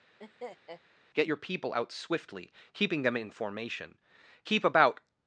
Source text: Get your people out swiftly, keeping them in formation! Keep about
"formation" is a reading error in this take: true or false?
false